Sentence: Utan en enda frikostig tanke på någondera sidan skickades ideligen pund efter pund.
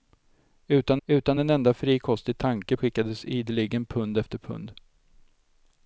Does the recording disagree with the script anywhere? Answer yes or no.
yes